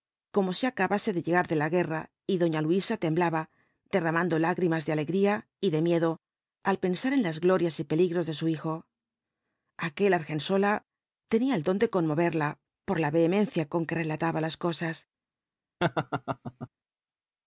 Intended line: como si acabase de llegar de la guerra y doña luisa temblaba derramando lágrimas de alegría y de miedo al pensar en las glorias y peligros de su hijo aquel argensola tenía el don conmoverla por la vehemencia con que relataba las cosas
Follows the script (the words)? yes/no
no